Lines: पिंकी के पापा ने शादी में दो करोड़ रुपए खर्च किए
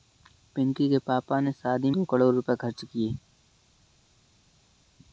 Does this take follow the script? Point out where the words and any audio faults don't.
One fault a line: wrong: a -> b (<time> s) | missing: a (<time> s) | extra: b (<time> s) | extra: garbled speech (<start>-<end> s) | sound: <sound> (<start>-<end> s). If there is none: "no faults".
missing: में (1.9 s)